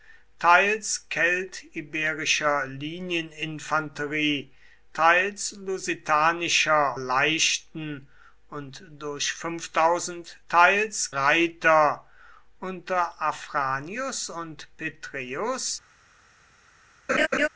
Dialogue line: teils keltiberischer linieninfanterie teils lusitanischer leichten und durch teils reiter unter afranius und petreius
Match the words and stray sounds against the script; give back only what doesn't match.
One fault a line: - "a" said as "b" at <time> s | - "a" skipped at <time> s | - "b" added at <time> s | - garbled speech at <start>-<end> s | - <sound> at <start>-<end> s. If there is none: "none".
- laugh at 17.1-17.5 s